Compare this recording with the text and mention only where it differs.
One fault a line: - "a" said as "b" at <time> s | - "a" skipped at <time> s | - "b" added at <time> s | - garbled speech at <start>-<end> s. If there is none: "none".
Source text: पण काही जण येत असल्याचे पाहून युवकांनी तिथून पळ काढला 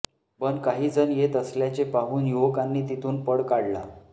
none